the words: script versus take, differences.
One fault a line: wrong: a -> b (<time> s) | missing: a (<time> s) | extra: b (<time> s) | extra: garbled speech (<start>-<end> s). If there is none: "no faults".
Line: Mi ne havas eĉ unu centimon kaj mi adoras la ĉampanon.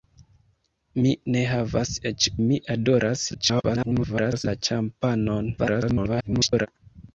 missing: unu centimon kaj (2.3 s)
extra: garbled speech (3.3-4.4 s)
extra: garbled speech (5.6-6.7 s)